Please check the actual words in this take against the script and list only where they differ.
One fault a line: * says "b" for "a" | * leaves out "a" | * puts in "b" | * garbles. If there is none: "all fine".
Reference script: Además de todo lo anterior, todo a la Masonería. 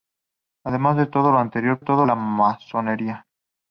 all fine